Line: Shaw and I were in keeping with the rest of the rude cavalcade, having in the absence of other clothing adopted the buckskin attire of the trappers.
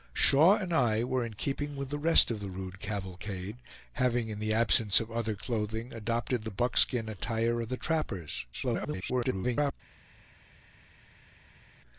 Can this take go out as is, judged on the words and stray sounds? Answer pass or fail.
fail